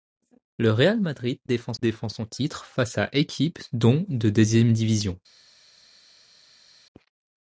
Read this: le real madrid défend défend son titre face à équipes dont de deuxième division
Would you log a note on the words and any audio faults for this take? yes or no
no